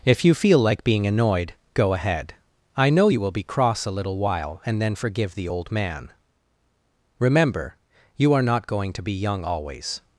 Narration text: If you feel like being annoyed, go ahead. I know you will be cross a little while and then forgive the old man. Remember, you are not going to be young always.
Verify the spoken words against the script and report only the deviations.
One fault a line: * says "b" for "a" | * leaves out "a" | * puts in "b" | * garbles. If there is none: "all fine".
all fine